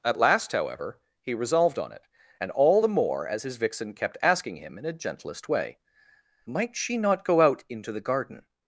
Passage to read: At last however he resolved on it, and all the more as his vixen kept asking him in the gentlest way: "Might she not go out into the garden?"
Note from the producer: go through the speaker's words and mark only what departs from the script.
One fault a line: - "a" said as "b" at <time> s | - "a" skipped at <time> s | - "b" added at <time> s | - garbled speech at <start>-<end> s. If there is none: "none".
- "the" said as "a" at 4.9 s